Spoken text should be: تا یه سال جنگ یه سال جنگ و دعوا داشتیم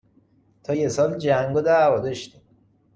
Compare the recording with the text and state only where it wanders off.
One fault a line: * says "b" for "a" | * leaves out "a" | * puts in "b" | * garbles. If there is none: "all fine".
* leaves out "یه سال جنگ"